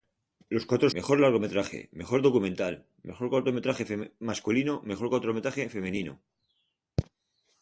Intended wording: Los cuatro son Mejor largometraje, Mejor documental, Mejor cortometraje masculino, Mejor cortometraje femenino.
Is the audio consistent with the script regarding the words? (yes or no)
no